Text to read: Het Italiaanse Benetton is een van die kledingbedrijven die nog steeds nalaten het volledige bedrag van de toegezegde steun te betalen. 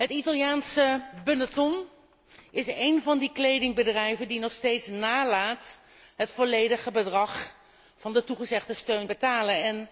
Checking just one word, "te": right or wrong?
wrong